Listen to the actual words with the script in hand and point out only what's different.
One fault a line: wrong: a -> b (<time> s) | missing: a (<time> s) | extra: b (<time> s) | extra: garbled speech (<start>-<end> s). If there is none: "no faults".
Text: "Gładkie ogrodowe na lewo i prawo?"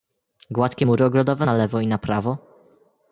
extra: mury (0.8 s)
extra: na (1.9 s)